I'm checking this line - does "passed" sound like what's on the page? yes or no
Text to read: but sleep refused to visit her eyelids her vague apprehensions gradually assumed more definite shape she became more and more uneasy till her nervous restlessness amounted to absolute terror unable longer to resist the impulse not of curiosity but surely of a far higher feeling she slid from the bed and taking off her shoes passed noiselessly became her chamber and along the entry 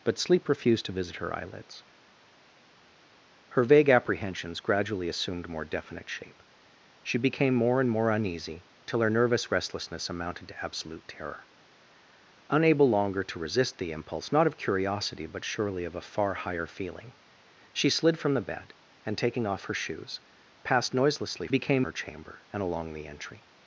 yes